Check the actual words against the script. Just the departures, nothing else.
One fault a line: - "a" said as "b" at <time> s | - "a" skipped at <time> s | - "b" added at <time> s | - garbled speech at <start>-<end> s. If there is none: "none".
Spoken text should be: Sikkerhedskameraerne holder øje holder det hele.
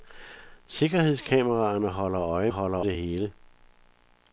none